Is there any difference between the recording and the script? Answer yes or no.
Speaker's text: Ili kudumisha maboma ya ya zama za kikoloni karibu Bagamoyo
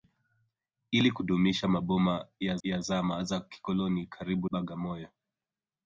no